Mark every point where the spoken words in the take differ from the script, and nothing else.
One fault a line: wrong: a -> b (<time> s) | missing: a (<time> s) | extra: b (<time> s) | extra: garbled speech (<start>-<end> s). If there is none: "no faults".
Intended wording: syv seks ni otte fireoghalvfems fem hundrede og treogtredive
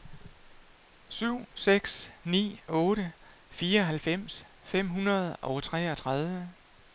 no faults